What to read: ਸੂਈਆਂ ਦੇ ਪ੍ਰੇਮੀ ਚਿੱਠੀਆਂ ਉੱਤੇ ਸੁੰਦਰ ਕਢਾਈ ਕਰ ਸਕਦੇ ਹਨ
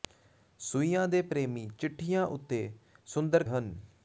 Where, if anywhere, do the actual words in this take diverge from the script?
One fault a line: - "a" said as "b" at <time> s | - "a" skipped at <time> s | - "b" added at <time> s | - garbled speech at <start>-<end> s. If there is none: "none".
- "ਕਢਾਈ ਕਰ ਸਕਦੇ" skipped at 3.4 s